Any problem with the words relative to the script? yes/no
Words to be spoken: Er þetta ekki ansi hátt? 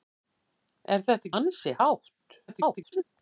yes